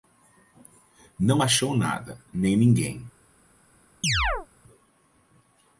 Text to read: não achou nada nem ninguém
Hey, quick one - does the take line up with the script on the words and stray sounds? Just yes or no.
no